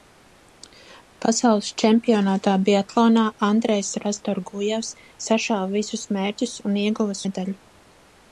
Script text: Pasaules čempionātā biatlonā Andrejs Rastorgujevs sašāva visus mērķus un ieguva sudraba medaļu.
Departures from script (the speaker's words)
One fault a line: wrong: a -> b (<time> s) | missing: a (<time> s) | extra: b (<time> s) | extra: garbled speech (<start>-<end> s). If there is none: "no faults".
missing: sudraba (7.2 s)